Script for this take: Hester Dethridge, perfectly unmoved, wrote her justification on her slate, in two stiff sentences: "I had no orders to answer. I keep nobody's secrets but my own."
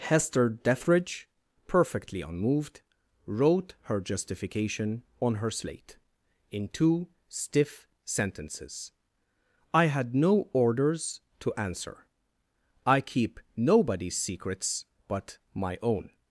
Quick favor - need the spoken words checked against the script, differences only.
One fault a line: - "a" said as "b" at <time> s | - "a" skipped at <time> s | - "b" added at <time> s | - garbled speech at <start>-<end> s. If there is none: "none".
none